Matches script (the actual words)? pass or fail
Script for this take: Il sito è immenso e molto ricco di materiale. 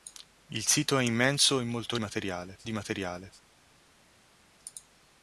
fail